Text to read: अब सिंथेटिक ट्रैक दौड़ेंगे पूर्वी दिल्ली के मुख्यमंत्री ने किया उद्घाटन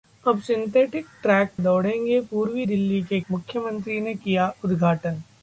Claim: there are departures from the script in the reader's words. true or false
false